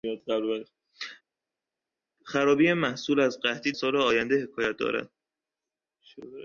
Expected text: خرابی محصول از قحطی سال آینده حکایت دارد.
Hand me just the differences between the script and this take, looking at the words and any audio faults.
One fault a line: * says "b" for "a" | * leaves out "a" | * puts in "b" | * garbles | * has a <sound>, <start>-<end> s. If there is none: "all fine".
all fine